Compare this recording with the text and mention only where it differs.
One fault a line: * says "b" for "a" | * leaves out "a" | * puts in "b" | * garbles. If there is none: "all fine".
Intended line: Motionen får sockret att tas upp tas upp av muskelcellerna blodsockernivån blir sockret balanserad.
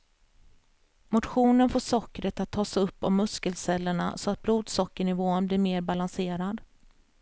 * says "av muskelcellerna så att" for "tas upp av muskelcellerna"
* says "mer" for "sockret"